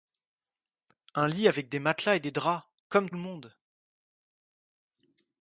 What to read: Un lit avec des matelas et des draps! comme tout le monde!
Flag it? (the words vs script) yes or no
yes